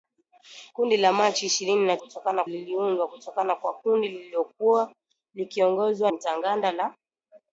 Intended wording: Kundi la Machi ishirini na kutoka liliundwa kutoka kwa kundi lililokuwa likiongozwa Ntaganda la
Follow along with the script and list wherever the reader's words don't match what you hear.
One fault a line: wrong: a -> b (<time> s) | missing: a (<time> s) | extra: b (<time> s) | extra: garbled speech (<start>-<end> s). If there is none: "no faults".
no faults